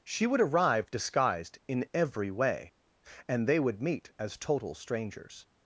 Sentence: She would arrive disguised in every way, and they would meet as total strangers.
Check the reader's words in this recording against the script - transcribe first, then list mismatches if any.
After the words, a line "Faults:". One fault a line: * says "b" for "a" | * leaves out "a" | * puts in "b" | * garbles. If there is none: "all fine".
She would arrive disguised in every way, and they would meet as total strangers.
Faults:
all fine